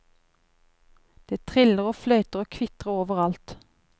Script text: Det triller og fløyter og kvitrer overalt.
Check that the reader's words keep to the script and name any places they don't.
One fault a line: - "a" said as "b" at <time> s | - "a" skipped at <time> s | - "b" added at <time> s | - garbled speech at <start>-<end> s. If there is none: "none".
none